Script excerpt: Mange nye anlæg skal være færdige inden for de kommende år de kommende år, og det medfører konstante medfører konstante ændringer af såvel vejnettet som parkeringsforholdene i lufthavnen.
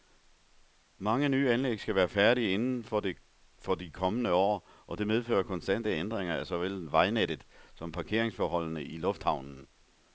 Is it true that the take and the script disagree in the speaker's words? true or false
true